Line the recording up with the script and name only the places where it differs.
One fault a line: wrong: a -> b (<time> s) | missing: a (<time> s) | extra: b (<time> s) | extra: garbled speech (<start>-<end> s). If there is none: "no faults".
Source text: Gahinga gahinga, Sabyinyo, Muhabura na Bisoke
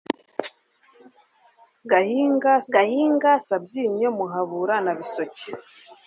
no faults